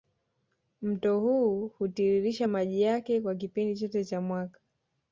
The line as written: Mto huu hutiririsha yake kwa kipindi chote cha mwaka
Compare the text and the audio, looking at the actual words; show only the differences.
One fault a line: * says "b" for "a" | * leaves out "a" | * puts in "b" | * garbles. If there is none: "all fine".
* puts in "maji"